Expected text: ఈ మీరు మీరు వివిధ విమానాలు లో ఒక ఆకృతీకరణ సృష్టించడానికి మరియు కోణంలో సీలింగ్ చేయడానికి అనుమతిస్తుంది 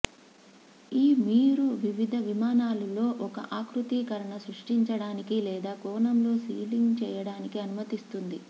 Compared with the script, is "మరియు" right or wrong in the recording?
wrong